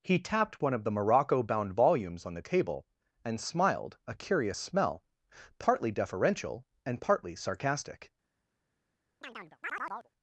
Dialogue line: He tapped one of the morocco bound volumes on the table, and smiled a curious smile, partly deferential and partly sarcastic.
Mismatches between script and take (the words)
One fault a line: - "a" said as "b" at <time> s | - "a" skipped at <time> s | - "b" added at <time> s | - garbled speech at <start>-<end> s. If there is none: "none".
- "smile" said as "smell" at 4.6 s